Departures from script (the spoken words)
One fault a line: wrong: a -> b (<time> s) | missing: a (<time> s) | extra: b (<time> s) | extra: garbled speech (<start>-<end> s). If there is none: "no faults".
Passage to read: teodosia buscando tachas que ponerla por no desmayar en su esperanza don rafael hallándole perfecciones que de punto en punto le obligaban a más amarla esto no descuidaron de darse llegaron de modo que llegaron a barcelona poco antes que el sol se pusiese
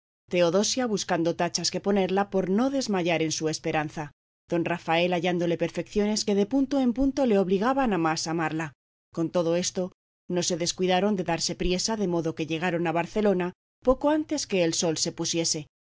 extra: con todo (9.1 s)
extra: se (10.4 s)
wrong: llegaron -> priesa (11.5 s)